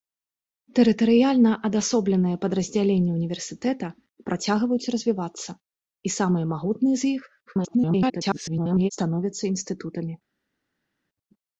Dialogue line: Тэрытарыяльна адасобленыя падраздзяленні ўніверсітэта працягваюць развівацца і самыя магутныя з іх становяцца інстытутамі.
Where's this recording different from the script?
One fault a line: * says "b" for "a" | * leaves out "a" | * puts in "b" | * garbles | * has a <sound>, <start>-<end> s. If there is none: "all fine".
* garbles